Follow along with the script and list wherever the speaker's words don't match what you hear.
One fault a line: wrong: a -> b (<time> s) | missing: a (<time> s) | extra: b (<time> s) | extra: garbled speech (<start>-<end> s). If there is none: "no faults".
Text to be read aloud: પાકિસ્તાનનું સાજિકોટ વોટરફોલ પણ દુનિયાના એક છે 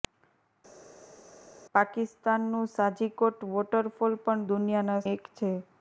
no faults